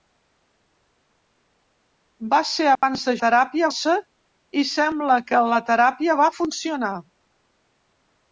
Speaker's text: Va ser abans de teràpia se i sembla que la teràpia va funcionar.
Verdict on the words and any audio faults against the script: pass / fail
fail